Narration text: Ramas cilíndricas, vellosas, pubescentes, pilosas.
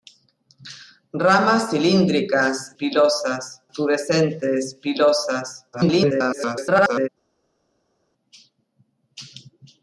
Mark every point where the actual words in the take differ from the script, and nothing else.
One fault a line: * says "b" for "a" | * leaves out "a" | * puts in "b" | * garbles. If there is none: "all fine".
* says "pilosas" for "vellosas"
* garbles